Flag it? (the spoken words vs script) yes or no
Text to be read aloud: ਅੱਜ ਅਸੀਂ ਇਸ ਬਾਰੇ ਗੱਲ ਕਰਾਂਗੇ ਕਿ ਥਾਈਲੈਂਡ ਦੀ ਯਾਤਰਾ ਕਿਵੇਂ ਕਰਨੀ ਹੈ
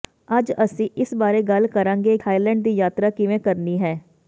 yes